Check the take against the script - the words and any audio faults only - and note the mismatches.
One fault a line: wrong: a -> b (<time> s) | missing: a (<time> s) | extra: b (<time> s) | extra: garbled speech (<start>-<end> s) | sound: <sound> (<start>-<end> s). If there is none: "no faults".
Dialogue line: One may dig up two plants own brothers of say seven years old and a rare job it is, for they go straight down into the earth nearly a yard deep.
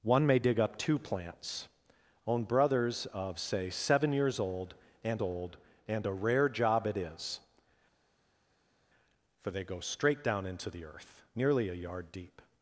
extra: old and (5.2 s)